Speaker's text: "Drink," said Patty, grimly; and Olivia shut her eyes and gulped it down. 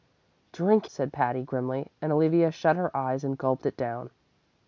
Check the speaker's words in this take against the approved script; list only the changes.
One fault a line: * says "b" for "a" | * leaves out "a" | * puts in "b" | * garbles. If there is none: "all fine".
all fine